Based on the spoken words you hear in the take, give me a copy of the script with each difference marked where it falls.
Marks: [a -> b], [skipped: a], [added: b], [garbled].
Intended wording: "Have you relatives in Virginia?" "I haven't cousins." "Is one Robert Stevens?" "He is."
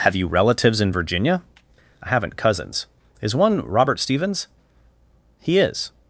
"Have you relatives in Virginia?" "I haven't cousins." "Is one Robert Stevens?" "He is."